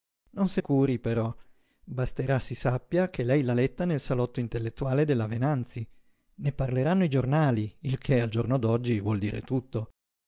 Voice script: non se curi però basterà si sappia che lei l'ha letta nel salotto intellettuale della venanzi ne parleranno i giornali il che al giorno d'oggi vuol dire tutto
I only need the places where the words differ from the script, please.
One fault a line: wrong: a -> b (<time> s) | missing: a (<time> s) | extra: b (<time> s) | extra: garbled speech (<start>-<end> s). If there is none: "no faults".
no faults